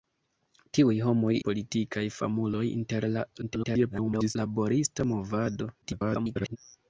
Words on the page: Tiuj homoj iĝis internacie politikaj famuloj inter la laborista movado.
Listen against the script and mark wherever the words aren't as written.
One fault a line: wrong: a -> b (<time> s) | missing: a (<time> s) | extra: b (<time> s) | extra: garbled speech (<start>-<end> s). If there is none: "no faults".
missing: iĝis internacie (1.3 s)
extra: garbled speech (3.4-4.4 s)
extra: garbled speech (5.8-6.6 s)